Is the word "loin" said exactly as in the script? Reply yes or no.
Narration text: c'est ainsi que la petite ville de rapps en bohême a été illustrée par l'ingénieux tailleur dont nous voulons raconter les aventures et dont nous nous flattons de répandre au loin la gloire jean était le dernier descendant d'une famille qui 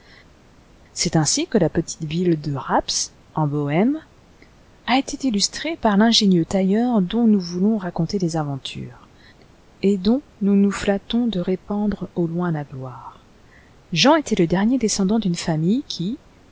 yes